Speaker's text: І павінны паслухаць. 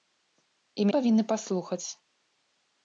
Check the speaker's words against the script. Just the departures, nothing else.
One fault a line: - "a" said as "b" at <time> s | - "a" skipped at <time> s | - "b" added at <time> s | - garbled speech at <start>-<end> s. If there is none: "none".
none